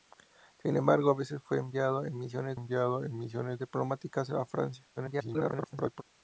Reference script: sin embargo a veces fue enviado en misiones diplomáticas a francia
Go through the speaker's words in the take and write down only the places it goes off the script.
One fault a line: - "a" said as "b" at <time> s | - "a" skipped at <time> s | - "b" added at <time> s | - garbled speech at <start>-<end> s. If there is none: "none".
- "enviado en misiones" added at 2.5 s
- garbled speech at 5.0-6.0 s